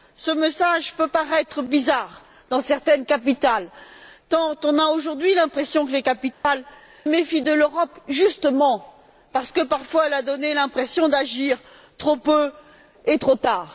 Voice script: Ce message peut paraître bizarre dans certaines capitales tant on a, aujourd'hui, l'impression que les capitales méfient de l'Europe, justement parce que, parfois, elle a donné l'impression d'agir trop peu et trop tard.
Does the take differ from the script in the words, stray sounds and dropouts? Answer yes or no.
yes